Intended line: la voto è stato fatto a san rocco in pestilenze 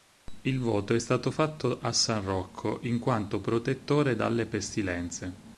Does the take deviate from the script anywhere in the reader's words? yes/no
yes